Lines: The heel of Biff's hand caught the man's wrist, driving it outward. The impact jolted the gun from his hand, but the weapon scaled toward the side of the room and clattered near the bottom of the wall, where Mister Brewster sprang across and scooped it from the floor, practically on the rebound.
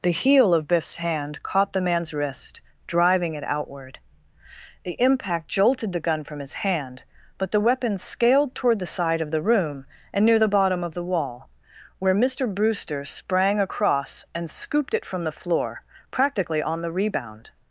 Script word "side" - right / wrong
right